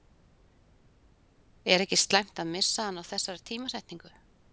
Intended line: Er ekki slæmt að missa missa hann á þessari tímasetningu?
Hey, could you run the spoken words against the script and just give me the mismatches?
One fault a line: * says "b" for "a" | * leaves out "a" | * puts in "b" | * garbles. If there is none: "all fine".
* leaves out "missa"